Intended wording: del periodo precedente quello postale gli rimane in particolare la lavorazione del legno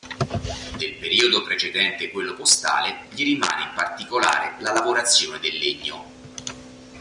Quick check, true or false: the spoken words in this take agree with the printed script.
true